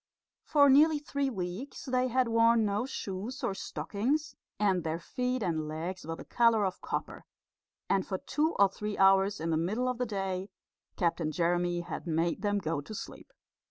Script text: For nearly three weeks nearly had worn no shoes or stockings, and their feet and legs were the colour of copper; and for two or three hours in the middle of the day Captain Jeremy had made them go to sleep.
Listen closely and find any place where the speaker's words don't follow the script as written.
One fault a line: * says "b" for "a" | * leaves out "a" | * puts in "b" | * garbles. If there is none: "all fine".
* says "they" for "nearly"